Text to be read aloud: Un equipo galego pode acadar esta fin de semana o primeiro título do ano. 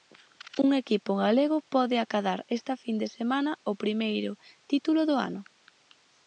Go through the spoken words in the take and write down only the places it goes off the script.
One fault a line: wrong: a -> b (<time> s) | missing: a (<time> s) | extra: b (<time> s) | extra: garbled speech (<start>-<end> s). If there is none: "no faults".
no faults